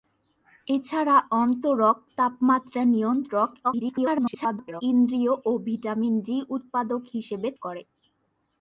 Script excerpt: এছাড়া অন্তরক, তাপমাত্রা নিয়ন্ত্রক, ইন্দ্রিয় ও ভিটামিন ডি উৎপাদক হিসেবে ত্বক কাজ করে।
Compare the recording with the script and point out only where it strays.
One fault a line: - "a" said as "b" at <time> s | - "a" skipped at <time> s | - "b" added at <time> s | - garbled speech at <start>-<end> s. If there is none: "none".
- garbled speech at 3.6-4.8 s
- "ত্বক কাজ" skipped at 7.5 s